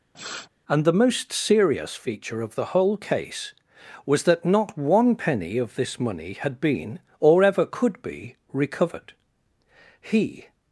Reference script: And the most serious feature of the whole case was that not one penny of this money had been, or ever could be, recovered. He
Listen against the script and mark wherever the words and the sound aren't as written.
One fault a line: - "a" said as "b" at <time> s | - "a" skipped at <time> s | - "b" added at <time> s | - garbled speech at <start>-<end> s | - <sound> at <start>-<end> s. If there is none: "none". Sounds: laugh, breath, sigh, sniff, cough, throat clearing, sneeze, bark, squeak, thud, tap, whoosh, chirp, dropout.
- sniff at 0.1-0.5 s